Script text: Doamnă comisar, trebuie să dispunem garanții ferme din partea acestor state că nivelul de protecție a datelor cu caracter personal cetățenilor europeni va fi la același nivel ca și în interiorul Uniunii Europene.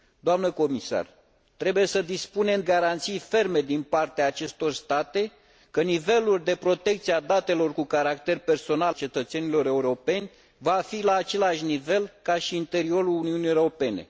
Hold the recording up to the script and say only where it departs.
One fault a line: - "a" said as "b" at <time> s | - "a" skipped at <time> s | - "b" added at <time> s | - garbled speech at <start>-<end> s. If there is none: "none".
none